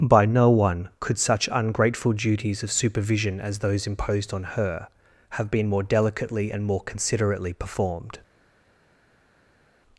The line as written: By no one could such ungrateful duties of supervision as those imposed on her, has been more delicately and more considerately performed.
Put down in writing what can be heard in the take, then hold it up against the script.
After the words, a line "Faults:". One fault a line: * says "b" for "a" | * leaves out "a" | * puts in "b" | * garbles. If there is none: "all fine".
By no one could such ungrateful duties of supervision as those imposed on her, have been more delicately and more considerately performed.
Faults:
* says "have" for "has"